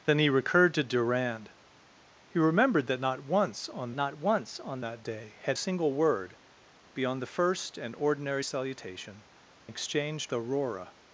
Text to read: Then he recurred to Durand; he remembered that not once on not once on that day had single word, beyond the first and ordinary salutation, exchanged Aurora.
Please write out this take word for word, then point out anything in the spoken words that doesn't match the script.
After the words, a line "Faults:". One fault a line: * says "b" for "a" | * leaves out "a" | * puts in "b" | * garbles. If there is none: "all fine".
Then he recurred to Durand; he remembered that not once on not once on that day had single word, beyond the first and ordinary salutation, exchanged Aurora.
Faults:
all fine